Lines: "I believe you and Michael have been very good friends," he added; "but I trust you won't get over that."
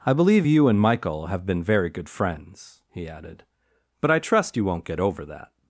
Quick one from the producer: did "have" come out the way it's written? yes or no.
yes